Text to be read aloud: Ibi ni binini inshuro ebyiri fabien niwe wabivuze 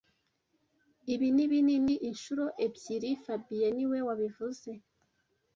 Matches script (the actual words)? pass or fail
pass